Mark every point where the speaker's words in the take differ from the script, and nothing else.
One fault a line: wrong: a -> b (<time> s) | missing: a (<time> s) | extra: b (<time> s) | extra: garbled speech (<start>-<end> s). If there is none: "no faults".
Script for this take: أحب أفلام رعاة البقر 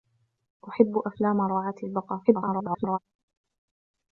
extra: garbled speech (2.2-3.0 s)